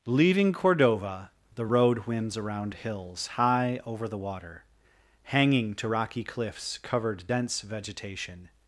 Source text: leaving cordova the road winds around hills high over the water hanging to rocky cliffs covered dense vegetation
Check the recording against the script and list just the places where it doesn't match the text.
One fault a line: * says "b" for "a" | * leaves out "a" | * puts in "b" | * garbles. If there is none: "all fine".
all fine